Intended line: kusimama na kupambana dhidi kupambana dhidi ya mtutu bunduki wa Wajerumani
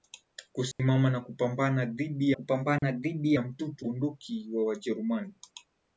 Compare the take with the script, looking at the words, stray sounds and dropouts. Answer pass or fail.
fail